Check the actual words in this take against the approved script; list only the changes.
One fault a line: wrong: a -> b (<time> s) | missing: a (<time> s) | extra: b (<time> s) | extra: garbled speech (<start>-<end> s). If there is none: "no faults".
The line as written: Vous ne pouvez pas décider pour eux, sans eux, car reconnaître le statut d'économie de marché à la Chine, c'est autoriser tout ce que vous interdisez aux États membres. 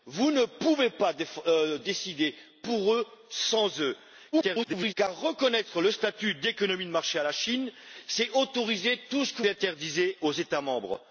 extra: garbled speech (4.3-4.9 s)
missing: vous (9.4 s)